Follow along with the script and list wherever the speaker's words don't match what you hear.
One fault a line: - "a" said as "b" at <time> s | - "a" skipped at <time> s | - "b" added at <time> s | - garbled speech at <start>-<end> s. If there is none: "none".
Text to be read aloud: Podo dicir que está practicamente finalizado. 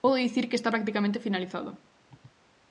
none